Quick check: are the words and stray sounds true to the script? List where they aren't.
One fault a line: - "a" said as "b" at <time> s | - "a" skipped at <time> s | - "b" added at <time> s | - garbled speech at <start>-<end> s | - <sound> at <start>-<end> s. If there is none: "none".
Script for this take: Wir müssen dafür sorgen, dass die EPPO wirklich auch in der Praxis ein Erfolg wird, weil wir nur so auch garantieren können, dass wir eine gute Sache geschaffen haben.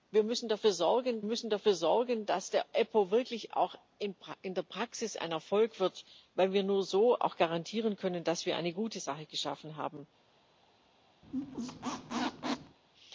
- "müssen dafür sorgen" added at 1.2 s
- squeak at 11.2-12.8 s